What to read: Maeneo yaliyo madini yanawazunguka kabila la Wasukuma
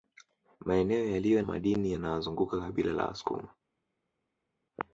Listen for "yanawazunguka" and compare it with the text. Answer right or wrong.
right